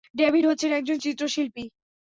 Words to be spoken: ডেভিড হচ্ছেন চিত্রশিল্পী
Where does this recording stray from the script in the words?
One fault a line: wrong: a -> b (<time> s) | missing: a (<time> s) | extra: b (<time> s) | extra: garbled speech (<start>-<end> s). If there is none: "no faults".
extra: একজন (0.7 s)